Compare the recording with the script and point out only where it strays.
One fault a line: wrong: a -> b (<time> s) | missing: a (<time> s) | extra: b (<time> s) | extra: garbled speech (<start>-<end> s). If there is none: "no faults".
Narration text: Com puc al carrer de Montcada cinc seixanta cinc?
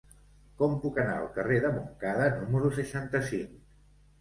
extra: anar (1.0 s)
wrong: cinc -> número (2.4 s)